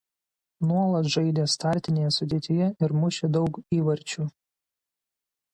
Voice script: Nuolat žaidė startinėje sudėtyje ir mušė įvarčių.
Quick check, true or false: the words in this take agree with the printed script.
false